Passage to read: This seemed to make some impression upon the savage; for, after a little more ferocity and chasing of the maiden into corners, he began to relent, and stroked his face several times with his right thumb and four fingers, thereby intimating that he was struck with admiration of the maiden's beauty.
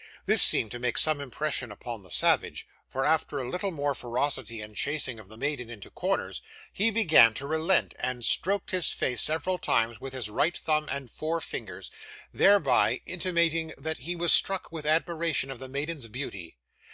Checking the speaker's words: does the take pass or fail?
pass